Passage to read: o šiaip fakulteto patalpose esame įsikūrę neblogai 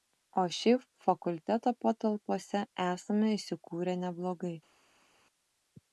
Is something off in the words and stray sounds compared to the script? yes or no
no